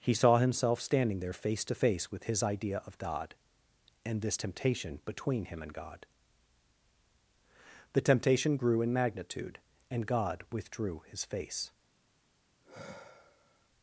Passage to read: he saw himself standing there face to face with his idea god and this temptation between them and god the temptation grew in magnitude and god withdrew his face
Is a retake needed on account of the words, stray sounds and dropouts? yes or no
yes